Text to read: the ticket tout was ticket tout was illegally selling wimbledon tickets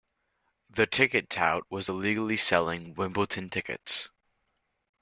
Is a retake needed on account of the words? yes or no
yes